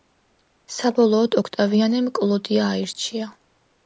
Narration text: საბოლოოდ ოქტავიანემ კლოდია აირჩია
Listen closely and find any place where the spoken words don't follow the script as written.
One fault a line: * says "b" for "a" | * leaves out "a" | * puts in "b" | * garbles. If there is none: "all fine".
all fine